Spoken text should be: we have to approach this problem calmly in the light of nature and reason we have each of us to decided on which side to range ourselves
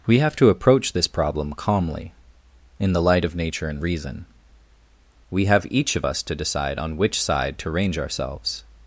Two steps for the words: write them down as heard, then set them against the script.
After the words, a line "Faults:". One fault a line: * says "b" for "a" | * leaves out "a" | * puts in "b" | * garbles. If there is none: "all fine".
we have to approach this problem calmly in the light of nature and reason we have each of us to decide on which side to range ourselves
Faults:
* says "decide" for "decided"